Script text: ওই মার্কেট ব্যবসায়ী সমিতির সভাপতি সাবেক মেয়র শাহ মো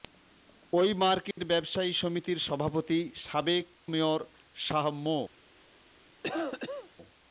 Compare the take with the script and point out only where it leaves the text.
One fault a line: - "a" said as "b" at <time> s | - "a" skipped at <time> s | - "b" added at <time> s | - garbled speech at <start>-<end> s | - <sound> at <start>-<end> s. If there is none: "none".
- dropout at 1.3-1.4 s
- cough at 6.2-6.9 s